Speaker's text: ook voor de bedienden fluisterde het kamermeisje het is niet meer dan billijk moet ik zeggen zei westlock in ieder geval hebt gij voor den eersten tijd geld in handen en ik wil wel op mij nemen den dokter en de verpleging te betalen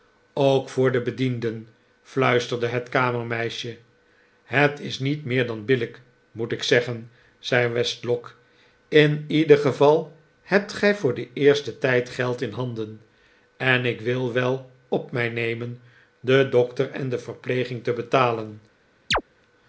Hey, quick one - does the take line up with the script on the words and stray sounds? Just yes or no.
no